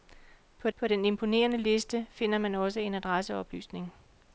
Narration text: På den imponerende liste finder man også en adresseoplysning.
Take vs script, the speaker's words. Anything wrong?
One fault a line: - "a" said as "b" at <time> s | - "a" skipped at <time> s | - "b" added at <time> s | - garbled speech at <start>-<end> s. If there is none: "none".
- "på" added at 0.7 s